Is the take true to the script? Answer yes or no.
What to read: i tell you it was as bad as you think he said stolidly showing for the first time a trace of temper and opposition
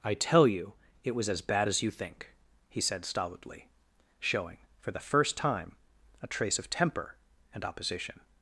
yes